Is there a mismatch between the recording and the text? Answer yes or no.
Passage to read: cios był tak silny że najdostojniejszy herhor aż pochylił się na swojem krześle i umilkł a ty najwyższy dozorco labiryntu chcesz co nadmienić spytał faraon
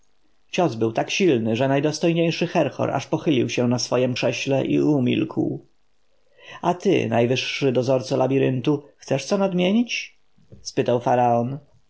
no